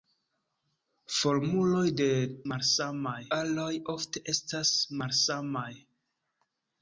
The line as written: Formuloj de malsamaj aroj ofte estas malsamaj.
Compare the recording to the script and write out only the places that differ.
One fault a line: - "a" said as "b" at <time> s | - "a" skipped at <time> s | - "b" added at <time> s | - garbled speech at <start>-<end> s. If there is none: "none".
none